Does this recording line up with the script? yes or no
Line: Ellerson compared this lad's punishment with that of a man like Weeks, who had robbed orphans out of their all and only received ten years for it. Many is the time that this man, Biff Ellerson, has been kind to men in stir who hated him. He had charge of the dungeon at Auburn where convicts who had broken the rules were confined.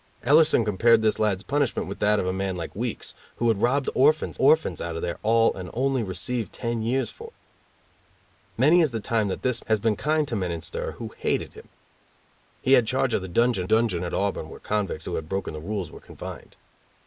no